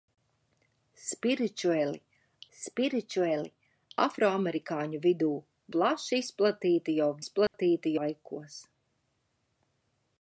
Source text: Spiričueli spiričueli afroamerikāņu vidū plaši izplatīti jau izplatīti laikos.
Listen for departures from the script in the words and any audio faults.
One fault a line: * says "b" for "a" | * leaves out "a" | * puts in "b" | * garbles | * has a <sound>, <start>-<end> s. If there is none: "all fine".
* has a dropout, 7.5-7.5 s